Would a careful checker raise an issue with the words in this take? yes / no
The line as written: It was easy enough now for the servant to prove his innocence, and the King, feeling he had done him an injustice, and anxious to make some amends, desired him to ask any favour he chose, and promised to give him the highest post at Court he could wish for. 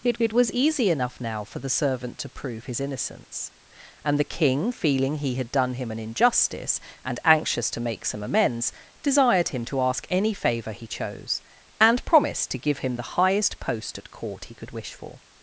yes